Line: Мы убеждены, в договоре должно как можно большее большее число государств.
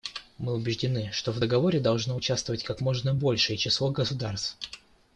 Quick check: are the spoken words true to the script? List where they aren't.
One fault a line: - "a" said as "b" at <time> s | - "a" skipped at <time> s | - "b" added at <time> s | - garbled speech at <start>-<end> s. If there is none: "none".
- "что" added at 1.1 s
- "участвовать" added at 2.1 s
- "большее" skipped at 3.6 s